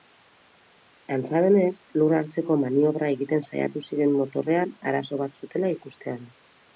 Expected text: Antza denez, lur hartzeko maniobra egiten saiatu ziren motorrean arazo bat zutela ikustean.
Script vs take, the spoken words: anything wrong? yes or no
no